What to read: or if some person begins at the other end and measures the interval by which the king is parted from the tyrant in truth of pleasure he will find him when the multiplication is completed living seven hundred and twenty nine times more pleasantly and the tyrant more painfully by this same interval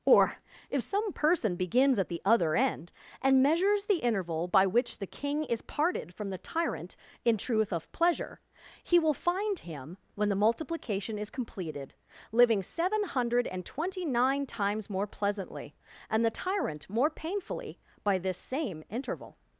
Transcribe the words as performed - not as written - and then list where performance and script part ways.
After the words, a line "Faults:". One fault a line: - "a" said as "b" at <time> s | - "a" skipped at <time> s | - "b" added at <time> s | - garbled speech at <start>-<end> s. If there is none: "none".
or if some person begins at the other end and measures the interval by which the king is parted from the tyrant in truth of pleasure he will find him when the multiplication is completed living seven hundred and twenty nine times more pleasantly and the tyrant more painfully by this same interval
Faults:
none